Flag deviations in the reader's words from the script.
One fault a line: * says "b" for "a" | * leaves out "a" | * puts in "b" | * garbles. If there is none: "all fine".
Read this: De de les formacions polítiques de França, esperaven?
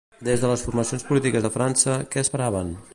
* says "Des" for "De"
* puts in "què"